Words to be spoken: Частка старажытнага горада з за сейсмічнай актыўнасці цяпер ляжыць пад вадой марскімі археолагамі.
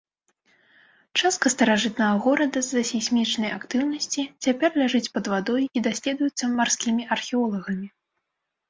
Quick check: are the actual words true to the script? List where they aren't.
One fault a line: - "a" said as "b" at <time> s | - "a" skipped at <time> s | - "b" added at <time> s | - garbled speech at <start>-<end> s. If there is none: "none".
- "і даследуецца" added at 5.8 s